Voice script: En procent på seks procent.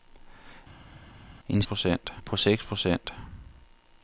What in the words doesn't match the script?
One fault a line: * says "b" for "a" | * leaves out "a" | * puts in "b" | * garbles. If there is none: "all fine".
all fine